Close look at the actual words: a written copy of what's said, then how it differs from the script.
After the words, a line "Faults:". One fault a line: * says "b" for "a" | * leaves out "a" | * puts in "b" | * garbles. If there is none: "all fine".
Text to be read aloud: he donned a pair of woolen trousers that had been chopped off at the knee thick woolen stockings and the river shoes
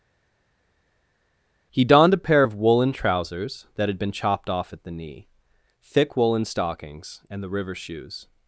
he donned a pair of woolen trousers that had been chopped off at the knee thick woolen stockings and the river shoes
Faults:
all fine